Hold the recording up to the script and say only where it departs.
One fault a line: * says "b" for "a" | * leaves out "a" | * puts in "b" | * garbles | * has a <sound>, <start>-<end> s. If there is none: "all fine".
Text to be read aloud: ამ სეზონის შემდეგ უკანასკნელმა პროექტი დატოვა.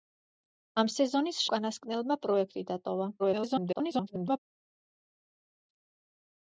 * leaves out "შემდეგ"
* garbles